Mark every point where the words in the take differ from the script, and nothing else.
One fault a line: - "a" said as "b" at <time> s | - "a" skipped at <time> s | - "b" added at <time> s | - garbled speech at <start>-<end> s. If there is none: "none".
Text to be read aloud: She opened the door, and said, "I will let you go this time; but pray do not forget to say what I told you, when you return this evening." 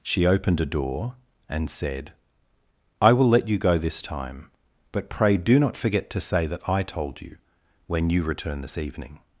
- "the" said as "a" at 0.6 s
- "what" said as "that" at 6.5 s